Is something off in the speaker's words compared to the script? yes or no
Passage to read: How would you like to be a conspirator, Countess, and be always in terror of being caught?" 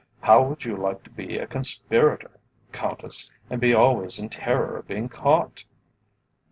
no